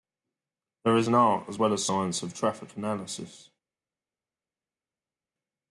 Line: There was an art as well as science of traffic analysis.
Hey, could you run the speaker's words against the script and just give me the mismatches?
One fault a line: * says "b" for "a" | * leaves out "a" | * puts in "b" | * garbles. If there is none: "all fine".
* says "is" for "was"